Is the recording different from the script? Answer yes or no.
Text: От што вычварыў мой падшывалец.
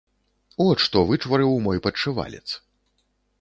no